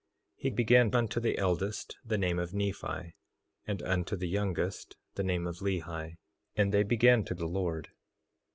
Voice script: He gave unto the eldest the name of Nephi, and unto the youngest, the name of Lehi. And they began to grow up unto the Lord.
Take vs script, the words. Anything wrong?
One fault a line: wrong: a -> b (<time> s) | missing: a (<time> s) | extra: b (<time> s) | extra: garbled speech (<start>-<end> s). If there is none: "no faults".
wrong: gave -> began (0.5 s)
missing: grow up unto (7.3 s)